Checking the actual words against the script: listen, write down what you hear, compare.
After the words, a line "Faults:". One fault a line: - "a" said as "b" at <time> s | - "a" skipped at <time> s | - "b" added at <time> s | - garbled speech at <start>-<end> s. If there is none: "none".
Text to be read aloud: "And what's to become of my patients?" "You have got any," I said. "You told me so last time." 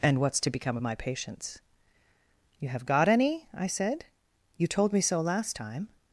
"And what's to become of my patients?" "You have got any," I said. "You told me so last time."
Faults:
none